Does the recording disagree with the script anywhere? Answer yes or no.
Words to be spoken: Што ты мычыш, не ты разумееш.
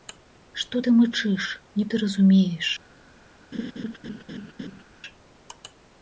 no